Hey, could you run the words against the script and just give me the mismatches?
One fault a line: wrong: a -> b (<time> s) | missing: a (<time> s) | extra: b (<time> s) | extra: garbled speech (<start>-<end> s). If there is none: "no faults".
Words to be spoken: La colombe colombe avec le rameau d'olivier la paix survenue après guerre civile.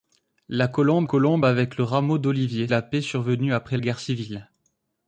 no faults